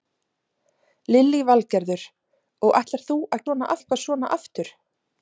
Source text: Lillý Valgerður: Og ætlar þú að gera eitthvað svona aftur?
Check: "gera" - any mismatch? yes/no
yes